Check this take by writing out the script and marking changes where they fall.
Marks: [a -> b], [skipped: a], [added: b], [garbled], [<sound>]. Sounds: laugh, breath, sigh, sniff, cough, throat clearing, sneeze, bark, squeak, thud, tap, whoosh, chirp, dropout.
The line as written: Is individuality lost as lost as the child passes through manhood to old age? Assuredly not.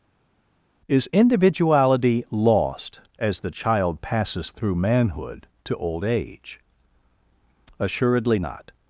Is individuality lost as [skipped: lost as] the child passes through manhood to old age? Assuredly not.